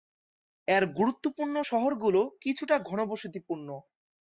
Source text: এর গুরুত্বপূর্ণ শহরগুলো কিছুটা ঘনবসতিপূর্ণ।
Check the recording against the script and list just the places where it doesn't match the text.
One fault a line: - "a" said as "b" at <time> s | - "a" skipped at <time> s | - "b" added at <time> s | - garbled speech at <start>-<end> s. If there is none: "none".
none